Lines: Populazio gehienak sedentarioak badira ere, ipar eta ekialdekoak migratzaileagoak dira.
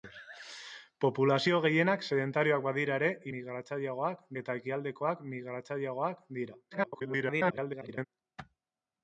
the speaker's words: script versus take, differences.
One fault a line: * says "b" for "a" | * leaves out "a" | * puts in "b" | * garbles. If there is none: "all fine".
* says "migratzaileagoak" for "ipar"
* garbles